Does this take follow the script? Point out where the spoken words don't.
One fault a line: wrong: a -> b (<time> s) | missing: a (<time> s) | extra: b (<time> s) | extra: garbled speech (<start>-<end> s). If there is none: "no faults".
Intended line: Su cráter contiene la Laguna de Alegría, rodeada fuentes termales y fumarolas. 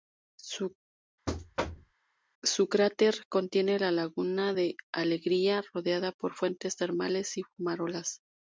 extra: por (6.1 s)